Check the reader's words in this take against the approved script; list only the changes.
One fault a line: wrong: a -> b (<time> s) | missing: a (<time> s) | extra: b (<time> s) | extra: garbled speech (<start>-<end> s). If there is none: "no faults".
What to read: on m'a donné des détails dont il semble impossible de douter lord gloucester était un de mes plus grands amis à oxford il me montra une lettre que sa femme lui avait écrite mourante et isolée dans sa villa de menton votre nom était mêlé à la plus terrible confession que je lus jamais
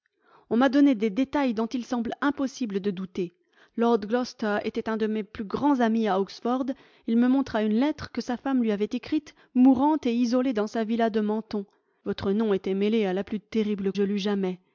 missing: confession que (13.9 s)